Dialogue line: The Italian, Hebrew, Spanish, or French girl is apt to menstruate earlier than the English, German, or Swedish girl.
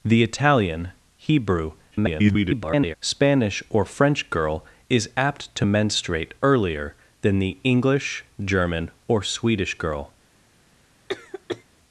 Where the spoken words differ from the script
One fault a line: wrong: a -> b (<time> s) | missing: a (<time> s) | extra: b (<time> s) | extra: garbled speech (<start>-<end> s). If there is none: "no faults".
extra: garbled speech (1.9-3.0 s)